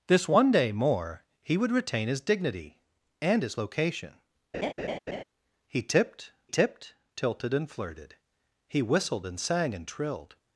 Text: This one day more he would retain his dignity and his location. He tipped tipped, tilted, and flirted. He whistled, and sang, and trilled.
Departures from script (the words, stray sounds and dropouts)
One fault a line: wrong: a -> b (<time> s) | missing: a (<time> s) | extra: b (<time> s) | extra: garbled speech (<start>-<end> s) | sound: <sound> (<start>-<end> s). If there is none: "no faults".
sound: laugh (4.5-5.2 s)